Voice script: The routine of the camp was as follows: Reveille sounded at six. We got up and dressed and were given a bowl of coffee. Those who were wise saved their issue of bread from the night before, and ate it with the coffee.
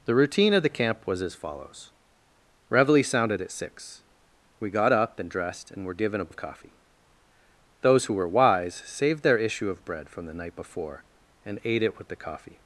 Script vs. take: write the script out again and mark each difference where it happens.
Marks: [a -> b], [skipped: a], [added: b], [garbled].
The routine of the camp was as follows: Reveille sounded at six. We got up and dressed and were given a [skipped: bowl] of coffee. Those who were wise saved their issue of bread from the night before, and ate it with the coffee.